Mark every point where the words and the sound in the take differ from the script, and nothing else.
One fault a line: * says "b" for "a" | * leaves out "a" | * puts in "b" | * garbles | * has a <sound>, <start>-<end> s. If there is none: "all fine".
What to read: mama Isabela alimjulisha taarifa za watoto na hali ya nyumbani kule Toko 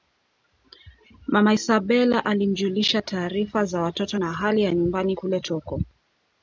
all fine